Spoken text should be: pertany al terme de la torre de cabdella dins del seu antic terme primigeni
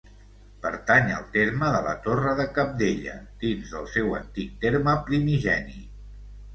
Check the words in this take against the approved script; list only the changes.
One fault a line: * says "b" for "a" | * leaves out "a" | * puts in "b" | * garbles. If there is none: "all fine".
all fine